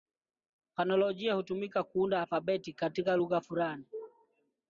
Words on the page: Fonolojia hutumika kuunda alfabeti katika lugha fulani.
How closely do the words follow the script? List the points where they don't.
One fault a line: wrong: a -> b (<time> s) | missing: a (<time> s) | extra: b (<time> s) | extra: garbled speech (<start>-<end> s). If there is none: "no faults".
no faults